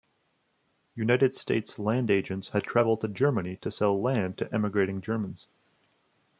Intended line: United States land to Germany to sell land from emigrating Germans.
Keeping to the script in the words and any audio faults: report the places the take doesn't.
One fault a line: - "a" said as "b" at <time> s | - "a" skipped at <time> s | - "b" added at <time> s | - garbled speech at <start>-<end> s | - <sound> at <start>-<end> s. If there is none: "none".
- "agents had traveled" added at 2.1 s
- "from" said as "to" at 4.4 s